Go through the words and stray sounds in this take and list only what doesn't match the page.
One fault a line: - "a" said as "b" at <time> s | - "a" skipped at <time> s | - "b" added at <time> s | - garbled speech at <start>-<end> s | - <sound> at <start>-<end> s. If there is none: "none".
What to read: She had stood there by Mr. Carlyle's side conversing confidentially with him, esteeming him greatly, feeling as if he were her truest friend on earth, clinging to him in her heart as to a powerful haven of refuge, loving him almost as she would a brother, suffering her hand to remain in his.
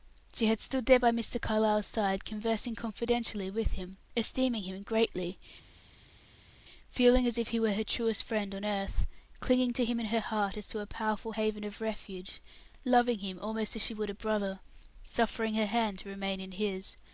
none